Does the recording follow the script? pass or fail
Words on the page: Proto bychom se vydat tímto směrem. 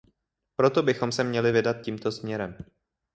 fail